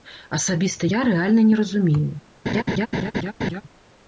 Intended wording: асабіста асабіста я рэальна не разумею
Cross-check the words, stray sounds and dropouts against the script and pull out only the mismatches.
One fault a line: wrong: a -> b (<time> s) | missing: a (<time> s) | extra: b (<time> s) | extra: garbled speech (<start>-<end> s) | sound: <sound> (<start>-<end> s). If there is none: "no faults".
missing: асабіста (0.9 s)
sound: laugh (2.5-3.6 s)